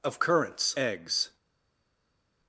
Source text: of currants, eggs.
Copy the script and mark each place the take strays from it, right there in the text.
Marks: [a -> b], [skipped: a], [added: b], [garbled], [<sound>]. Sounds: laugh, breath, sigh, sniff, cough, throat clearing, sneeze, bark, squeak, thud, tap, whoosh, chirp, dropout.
of currants, eggs.